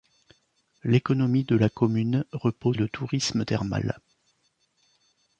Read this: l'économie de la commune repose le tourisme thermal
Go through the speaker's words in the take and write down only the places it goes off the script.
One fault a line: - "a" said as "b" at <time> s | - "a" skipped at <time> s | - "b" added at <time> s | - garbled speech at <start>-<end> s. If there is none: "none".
none